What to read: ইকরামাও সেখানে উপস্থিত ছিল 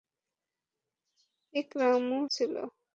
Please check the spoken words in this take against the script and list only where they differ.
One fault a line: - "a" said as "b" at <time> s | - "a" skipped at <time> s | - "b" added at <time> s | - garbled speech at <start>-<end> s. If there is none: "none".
- "সেখানে উপস্থিত" skipped at 2.2 s